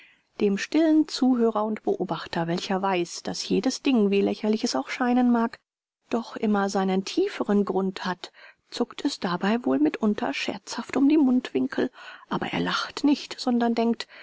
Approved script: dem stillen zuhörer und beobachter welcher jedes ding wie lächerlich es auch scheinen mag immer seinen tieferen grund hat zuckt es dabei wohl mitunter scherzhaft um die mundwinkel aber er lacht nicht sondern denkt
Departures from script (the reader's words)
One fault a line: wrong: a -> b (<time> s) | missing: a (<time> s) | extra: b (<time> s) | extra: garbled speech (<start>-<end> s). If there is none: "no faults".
extra: weiß daß (2.8 s)
extra: doch (6.1 s)